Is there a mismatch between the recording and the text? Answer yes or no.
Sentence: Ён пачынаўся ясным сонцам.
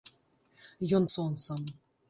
yes